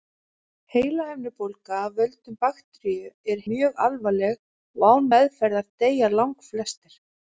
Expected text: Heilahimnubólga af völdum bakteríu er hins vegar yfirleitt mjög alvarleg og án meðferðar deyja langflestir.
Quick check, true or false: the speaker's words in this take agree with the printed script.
false